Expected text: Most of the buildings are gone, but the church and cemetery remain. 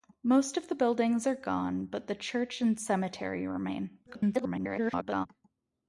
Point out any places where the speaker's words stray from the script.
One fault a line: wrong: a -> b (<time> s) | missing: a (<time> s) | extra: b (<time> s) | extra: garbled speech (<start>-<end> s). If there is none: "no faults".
extra: garbled speech (4.1-5.3 s)